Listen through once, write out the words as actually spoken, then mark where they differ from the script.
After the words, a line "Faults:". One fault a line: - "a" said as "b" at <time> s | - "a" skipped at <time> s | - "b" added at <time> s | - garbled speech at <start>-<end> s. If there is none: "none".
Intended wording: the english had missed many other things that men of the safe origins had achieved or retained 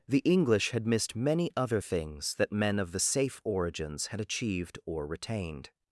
the english had missed many other things that men of the safe origins had achieved or retained
Faults:
none